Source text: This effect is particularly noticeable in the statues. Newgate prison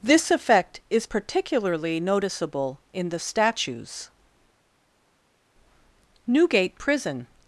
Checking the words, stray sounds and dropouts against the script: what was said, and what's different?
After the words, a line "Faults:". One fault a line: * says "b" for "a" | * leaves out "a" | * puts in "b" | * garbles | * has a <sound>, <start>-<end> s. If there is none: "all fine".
This effect is particularly noticeable in the statues. Newgate prison
Faults:
all fine